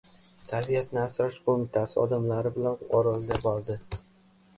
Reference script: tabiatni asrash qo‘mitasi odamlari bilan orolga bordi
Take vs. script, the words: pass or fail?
pass